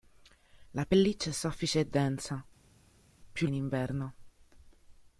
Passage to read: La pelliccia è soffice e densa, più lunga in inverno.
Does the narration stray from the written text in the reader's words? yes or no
yes